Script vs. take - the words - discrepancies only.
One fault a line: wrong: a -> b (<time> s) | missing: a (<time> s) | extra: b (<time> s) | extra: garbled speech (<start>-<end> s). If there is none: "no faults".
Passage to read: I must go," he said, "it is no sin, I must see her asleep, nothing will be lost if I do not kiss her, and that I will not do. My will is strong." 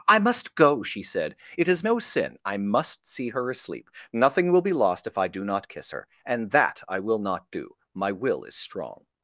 wrong: he -> she (0.8 s)